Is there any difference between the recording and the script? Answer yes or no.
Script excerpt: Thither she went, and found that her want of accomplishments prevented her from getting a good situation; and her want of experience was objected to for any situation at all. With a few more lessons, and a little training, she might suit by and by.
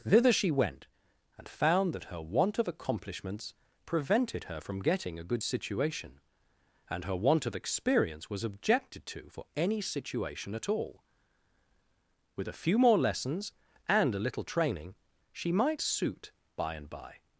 no